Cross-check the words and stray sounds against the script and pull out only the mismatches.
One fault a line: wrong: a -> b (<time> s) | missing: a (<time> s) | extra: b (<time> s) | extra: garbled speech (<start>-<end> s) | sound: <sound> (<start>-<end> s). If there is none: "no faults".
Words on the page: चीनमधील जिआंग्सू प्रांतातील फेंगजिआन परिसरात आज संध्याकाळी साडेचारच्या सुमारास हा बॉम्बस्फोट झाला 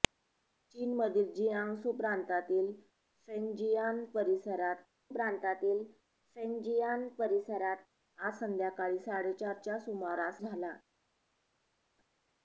extra: प्रांतातील फेंगजिआन परिसरात (5.1 s)
missing: हा बॉम्बस्फोट (10.4 s)